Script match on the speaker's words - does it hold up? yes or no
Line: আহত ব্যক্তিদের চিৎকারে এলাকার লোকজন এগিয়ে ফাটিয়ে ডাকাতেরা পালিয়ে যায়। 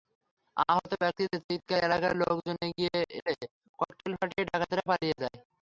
no